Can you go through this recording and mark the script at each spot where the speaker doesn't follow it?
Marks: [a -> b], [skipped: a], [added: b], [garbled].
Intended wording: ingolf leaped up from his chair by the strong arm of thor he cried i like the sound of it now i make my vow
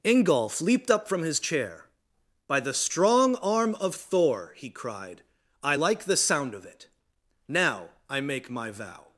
ingolf leaped up from his chair by the strong arm of thor he cried i like the sound of it now i make my vow